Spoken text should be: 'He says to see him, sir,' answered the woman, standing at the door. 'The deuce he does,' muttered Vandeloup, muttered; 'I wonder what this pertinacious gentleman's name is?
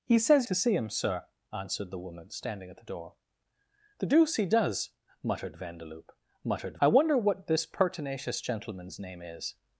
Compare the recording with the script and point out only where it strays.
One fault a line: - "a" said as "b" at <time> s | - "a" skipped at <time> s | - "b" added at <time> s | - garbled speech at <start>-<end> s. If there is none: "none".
none